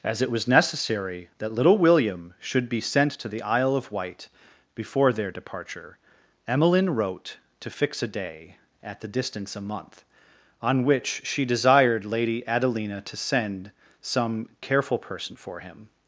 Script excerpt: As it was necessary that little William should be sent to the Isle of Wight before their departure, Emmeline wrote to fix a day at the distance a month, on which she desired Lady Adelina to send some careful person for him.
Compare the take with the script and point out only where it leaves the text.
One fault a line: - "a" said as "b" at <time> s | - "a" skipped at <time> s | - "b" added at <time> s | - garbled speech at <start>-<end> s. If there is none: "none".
none